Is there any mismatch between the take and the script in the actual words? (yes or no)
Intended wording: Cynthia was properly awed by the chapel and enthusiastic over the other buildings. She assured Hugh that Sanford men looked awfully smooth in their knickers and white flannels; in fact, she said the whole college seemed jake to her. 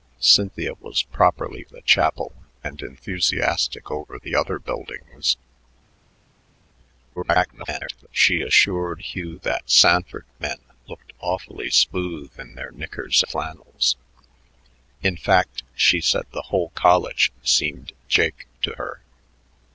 yes